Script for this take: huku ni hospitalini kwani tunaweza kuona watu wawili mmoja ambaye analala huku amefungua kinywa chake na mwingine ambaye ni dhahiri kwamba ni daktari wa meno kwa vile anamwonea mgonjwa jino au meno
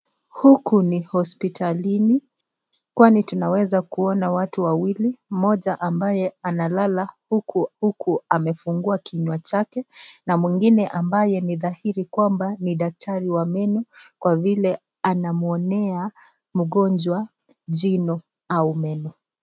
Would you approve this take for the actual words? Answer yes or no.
no